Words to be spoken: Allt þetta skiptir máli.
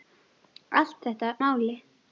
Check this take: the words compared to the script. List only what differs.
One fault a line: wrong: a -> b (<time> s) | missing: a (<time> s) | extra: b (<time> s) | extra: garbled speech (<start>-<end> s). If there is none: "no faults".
missing: skiptir (1.3 s)